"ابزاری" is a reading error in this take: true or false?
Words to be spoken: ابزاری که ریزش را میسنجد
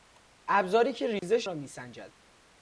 false